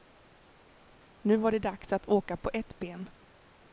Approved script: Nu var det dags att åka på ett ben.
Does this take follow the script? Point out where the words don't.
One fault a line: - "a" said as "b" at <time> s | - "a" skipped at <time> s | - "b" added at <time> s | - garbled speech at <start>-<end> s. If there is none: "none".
none